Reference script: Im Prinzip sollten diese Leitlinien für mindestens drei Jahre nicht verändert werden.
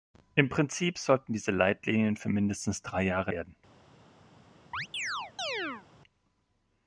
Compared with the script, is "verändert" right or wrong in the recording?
wrong